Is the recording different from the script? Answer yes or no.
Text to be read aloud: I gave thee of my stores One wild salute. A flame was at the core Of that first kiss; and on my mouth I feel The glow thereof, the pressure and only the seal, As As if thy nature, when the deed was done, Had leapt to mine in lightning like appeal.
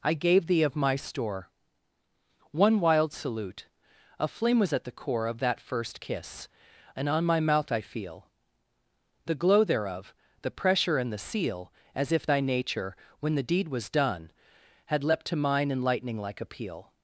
yes